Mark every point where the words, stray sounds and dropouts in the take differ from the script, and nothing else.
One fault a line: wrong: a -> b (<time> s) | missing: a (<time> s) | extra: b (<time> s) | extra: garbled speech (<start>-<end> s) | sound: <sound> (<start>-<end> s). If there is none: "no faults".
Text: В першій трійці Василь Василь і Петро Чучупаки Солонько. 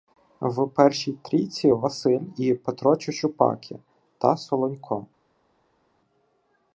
missing: Василь (2.2 s)
extra: та (4.2 s)